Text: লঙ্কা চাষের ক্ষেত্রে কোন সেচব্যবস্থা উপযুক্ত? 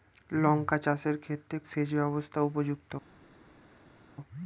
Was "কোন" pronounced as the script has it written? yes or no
no